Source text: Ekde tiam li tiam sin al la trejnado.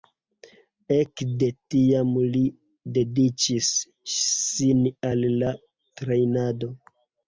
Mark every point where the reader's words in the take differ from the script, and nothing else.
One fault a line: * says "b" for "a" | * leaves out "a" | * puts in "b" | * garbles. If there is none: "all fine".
* says "dediĉis" for "tiam"